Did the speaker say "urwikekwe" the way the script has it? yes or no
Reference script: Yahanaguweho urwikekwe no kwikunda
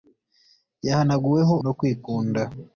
no